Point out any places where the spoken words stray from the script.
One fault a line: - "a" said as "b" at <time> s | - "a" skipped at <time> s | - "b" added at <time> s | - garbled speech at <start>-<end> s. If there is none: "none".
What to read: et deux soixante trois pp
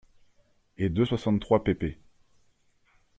none